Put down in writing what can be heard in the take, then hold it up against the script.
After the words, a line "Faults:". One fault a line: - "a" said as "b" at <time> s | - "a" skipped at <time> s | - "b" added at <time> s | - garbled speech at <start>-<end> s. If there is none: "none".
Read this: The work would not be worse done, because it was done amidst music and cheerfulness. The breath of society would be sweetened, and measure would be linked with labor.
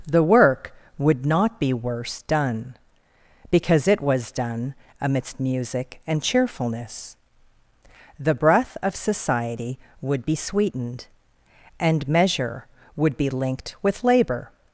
The work would not be worse done, because it was done amidst music and cheerfulness. The breath of society would be sweetened, and measure would be linked with labor.
Faults:
none